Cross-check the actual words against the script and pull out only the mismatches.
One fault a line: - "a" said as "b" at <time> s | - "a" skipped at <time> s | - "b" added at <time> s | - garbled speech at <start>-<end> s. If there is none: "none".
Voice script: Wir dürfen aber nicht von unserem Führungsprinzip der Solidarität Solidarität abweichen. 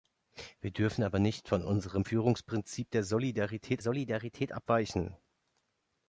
none